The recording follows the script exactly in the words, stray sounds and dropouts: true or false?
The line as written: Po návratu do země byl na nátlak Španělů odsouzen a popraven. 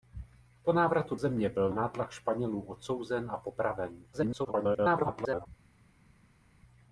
false